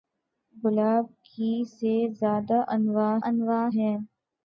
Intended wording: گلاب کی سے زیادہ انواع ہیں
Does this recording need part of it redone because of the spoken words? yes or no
yes